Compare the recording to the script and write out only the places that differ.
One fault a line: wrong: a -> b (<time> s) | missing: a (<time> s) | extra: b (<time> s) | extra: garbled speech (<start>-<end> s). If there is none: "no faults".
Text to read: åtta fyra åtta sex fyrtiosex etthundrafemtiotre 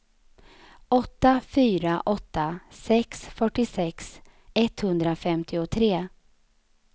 no faults